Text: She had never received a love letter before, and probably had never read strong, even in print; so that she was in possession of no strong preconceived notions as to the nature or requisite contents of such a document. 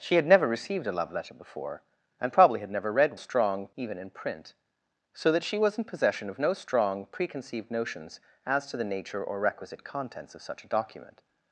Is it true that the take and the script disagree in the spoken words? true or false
false